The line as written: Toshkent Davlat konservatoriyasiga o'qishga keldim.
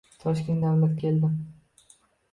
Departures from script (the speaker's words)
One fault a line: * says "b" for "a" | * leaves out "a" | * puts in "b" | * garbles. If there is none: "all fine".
* leaves out "konservatoriyasiga o'qishga"